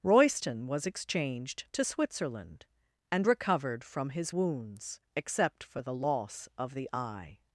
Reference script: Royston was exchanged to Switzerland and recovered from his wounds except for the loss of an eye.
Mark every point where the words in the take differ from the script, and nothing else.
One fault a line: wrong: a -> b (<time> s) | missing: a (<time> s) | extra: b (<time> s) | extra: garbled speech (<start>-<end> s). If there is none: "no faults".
wrong: an -> the (6.7 s)